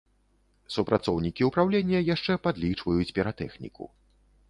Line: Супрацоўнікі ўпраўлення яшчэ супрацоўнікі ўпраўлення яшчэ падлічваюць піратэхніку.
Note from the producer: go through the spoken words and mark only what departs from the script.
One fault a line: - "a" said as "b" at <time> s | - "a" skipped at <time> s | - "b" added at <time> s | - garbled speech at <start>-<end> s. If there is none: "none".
- "супрацоўнікі ўпраўлення яшчэ" skipped at 2.4 s